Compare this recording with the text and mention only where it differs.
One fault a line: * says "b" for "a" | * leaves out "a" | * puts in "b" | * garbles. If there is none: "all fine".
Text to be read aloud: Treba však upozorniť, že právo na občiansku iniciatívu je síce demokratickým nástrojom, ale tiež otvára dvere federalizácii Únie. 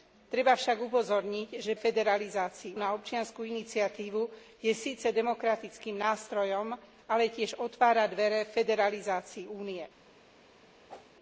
* says "federalizácii" for "právo"